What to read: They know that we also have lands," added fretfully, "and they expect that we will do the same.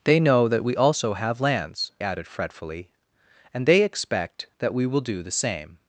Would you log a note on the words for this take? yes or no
no